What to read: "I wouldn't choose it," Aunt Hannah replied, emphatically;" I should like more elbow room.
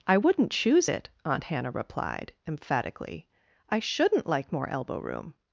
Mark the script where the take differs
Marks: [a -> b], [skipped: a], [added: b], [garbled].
"I wouldn't choose it," Aunt Hannah replied, emphatically;" I [should -> shouldn't] like more elbow room.